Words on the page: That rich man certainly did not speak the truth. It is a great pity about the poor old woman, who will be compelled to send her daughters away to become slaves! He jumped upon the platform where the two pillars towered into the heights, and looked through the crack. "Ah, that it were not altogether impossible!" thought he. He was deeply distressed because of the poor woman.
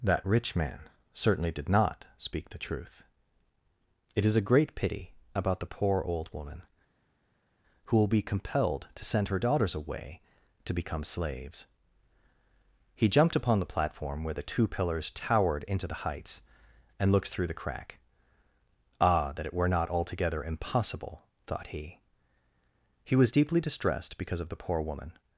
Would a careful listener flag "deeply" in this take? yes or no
no